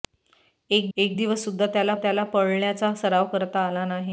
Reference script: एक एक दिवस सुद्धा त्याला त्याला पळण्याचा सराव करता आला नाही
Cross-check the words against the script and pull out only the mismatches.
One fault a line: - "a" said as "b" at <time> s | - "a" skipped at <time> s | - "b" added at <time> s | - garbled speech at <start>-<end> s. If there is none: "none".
none